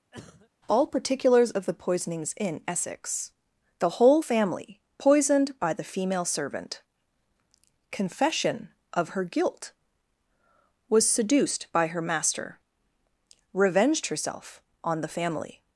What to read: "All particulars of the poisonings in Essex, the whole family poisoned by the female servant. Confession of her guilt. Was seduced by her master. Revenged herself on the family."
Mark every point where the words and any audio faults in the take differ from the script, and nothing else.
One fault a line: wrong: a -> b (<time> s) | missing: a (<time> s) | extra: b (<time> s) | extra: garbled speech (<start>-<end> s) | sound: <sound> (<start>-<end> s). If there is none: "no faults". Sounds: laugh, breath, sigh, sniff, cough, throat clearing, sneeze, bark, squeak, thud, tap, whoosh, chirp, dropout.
sound: cough (0.1-0.5 s)